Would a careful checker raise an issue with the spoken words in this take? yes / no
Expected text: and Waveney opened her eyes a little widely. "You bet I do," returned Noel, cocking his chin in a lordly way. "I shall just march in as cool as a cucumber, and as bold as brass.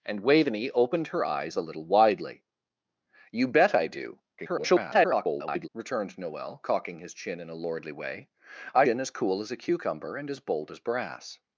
yes